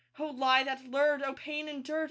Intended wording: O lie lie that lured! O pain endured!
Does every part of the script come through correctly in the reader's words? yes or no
no